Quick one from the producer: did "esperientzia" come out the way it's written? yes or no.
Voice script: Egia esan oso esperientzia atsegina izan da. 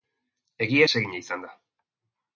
no